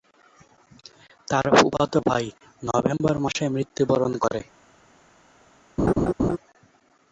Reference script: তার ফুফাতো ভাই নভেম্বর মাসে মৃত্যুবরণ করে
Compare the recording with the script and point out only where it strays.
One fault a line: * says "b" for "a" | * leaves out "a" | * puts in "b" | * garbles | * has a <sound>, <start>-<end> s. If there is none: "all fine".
* has a laugh, 5.8-6.4 s